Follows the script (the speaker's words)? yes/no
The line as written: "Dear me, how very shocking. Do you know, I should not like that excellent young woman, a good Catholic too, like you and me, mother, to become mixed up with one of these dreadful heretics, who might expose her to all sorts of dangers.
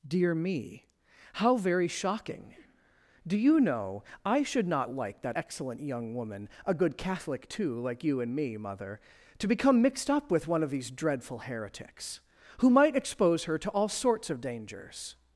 yes